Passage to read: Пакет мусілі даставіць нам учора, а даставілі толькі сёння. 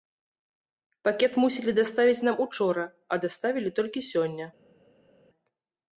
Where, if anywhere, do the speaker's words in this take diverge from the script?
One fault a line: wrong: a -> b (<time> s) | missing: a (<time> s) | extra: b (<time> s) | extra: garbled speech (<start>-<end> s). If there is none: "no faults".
no faults